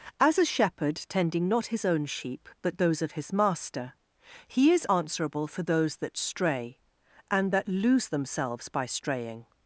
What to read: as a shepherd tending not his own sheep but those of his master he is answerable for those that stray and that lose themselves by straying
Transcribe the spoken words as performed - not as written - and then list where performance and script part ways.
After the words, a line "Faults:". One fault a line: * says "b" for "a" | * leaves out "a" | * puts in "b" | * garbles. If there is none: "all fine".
as a shepherd tending not his own sheep but those of his master he is answerable for those that stray and that lose themselves by straying
Faults:
all fine